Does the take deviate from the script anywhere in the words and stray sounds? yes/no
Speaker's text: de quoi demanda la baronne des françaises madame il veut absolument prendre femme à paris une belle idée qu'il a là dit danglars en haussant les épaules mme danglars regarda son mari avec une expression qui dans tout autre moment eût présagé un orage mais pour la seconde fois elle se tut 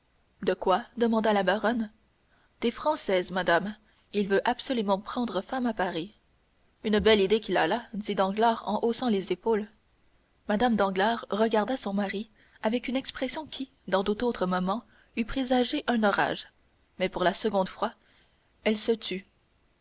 no